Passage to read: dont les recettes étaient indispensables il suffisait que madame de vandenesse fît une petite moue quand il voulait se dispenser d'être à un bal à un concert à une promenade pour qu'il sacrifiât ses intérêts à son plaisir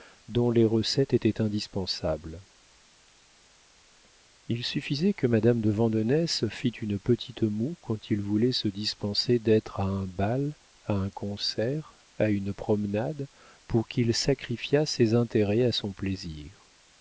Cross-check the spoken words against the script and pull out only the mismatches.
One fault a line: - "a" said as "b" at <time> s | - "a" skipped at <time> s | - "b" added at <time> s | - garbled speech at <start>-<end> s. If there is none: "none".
none